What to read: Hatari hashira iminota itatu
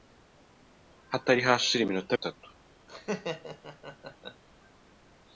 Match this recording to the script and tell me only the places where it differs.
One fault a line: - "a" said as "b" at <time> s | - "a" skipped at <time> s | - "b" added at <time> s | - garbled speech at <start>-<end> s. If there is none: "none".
none